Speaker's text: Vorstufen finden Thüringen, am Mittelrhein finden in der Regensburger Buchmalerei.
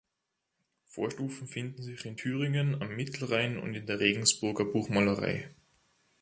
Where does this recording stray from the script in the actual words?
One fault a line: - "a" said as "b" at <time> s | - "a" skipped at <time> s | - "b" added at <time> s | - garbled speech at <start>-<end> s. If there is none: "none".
- "sich in" added at 1.8 s
- "finden" said as "und" at 3.6 s